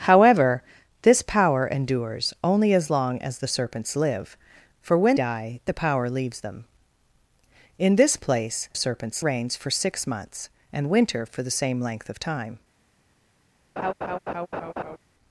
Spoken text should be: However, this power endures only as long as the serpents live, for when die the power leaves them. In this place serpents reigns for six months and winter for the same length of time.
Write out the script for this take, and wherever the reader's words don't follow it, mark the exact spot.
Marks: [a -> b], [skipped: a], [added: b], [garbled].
However, this power endures only as long as the serpents live, for when die the power leaves them. In this place serpents reigns for six months and winter for the same length of time.